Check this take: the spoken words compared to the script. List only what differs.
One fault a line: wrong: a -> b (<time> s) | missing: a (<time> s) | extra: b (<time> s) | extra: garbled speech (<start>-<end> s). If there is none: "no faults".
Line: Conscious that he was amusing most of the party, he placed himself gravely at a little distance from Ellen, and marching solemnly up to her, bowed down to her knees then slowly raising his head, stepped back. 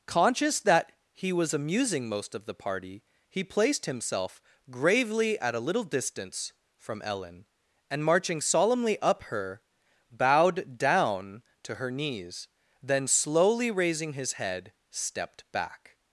missing: to (9.2 s)